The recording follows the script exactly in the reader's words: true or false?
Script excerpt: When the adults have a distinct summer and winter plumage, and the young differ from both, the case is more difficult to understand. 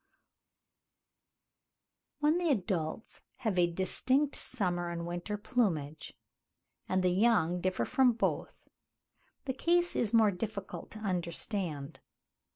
true